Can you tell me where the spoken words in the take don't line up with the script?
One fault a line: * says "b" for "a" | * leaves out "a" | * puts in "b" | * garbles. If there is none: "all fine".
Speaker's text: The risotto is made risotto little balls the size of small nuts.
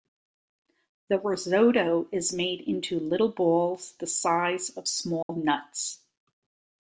* says "into" for "risotto"